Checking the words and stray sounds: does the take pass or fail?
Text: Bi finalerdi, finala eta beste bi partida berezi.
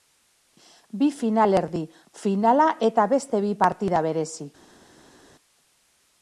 pass